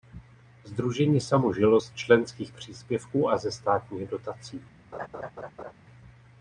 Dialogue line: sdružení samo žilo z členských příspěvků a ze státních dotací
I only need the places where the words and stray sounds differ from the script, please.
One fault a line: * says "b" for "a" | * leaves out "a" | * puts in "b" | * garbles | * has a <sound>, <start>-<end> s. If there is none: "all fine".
* has a laugh, 4.9-5.7 s